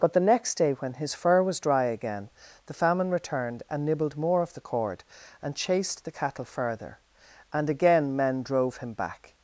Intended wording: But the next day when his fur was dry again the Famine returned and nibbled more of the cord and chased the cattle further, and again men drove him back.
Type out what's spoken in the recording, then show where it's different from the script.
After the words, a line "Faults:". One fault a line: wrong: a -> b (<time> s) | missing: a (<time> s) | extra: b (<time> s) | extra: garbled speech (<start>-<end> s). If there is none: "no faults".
But the next day when his fur was dry again the Famine returned and nibbled more of the cord and chased the cattle further, and again men drove him back.
Faults:
no faults